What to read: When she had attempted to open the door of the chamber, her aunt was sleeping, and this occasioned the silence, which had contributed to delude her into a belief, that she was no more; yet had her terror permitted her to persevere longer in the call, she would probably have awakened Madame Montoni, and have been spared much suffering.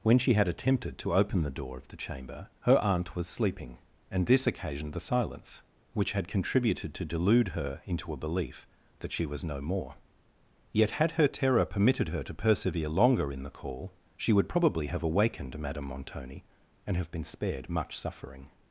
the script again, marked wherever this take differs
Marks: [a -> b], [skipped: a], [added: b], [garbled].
When she had attempted to open the door of the chamber, her aunt was sleeping, and this occasioned the silence, which had contributed to delude her into a belief, that she was no more; yet had her terror permitted her to persevere longer in the call, she would probably have awakened Madame Montoni, and have been spared much suffering.